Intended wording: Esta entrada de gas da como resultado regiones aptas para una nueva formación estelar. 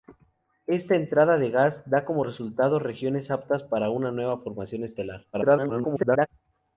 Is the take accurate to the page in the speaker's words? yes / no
no